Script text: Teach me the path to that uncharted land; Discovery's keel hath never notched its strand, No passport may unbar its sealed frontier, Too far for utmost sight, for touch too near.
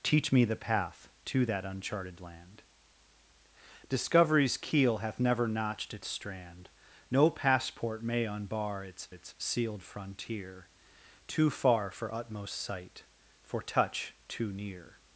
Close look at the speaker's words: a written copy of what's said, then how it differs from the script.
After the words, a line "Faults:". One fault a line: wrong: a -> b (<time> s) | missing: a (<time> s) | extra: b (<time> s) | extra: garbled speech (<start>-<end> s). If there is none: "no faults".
Teach me the path to that uncharted land; Discovery's keel hath never notched its strand, No passport may unbar its its sealed frontier, Too far for utmost sight, for touch too near.
Faults:
extra: its (9.1 s)